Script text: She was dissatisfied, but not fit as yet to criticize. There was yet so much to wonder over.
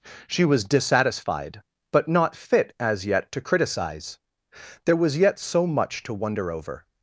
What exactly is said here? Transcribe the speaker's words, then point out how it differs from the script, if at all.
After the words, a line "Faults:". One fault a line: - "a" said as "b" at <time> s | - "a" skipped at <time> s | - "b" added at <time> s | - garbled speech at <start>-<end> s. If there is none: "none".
She was dissatisfied, but not fit as yet to criticize. There was yet so much to wonder over.
Faults:
none